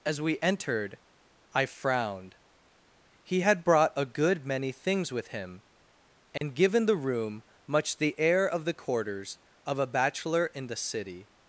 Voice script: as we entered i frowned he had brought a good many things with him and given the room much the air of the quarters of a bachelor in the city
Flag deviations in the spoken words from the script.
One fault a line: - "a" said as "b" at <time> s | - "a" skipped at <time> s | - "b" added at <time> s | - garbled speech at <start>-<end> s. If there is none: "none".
none